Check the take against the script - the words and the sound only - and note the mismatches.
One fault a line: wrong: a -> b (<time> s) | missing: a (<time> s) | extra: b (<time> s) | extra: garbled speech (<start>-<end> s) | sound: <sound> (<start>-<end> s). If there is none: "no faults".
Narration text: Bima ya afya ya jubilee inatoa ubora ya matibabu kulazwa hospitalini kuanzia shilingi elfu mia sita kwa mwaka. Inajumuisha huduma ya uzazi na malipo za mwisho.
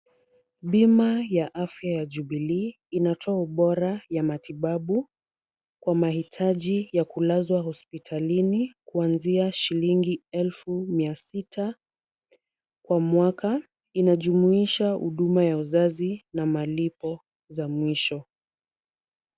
extra: kwa mahitaji ya (5.8 s)